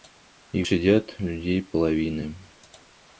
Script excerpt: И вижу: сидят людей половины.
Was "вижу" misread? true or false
true